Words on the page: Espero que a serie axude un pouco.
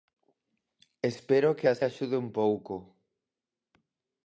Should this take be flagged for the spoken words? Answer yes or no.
yes